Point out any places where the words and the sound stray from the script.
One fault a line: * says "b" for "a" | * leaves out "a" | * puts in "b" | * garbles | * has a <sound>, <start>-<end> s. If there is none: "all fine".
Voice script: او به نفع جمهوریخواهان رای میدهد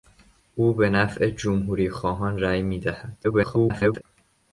* garbles